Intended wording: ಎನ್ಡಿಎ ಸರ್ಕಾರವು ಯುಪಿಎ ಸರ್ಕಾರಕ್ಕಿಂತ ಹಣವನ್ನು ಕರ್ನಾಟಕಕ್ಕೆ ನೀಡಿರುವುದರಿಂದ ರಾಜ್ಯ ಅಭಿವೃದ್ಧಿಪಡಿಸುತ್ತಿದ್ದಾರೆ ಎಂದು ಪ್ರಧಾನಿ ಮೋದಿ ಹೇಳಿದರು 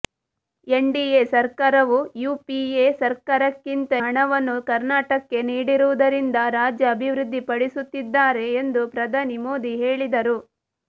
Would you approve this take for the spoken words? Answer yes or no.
yes